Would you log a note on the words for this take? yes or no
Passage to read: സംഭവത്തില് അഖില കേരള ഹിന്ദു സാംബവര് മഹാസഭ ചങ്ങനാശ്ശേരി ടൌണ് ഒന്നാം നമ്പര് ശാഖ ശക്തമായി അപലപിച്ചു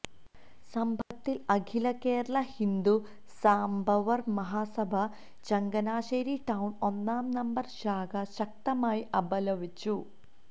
no